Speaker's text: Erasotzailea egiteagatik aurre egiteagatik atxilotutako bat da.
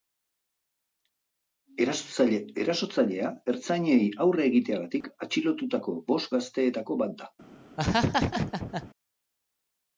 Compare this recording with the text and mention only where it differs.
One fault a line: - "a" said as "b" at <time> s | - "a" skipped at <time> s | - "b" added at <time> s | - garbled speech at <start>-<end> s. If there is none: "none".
- "egiteagatik" said as "ertzainei" at 3.5 s
- "bost gazteetako" added at 6.1 s